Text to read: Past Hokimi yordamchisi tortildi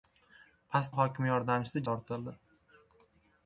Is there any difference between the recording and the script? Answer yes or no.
no